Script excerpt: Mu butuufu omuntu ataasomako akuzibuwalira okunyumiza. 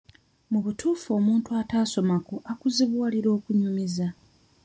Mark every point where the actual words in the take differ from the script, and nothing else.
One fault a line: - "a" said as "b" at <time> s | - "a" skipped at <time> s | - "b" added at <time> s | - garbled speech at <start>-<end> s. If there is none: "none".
none